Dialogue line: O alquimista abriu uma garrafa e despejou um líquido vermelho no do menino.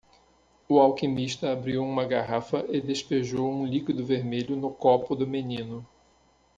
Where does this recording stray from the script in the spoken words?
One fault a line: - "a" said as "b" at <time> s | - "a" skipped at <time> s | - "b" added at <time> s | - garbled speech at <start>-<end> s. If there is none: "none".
- "copo" added at 4.7 s